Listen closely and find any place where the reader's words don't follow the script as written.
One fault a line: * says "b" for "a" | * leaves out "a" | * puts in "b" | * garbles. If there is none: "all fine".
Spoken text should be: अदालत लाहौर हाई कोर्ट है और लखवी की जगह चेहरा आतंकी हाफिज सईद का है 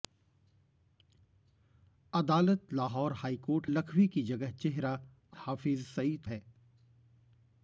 * leaves out "है और"
* leaves out "आतंकी"
* leaves out "का"